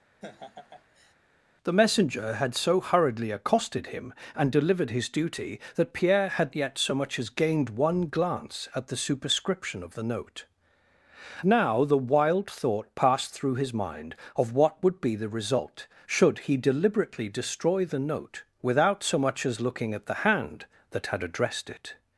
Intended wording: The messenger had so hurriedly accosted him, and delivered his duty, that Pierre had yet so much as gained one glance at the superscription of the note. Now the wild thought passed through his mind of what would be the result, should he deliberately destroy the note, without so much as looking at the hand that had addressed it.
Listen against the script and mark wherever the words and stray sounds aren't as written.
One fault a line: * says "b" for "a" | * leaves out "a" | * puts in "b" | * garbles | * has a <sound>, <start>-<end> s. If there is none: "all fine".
* has a laugh, 0.2-1.1 s